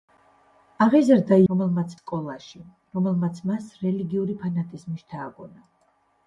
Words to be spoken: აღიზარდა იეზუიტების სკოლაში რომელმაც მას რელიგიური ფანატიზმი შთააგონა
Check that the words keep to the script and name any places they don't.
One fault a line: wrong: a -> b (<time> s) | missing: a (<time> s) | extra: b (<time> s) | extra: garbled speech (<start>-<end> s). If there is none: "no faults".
wrong: იეზუიტების -> რომელმაც (1.5 s)